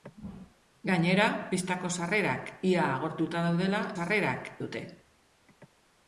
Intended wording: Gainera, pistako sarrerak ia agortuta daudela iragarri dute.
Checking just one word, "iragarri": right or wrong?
wrong